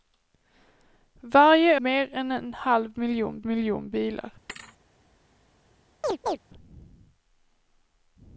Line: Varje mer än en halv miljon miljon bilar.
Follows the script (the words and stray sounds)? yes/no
no